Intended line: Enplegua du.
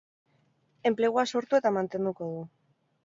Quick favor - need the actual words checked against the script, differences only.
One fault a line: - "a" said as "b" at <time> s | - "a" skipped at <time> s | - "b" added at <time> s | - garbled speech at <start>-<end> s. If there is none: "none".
- "sortu eta mantenduko" added at 1.3 s